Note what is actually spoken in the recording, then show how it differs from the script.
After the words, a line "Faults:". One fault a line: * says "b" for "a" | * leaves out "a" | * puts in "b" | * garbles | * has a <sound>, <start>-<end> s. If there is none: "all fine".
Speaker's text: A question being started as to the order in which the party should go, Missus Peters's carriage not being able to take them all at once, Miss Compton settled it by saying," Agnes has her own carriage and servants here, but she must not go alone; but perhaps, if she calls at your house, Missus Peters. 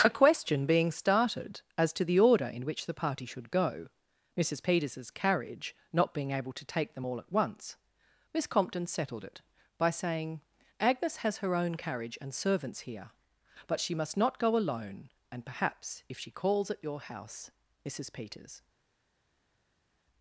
A question being started as to the order in which the party should go, Missus Peters's carriage not being able to take them all at once, Miss Compton settled it by saying," Agnes has her own carriage and servants here, but she must not go alone; and perhaps, if she calls at your house, Missus Peters.
Faults:
* says "and" for "but"